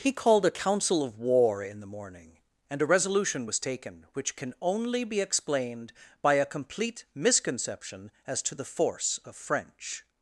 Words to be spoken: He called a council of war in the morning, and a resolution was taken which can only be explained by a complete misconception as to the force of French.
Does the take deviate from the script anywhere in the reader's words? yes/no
no